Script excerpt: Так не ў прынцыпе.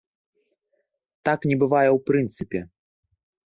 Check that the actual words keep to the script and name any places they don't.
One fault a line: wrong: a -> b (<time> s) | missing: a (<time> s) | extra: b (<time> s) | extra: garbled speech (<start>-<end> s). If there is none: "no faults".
extra: бывае (1.6 s)